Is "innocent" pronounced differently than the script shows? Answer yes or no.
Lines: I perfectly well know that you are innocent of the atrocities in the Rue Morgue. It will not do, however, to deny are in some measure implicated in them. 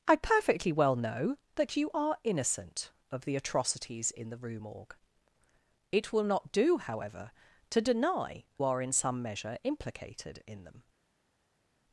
no